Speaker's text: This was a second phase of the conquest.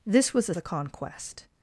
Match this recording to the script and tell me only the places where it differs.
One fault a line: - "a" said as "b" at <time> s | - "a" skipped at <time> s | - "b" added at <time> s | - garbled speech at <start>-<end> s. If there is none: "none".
- "second phase of" skipped at 0.6 s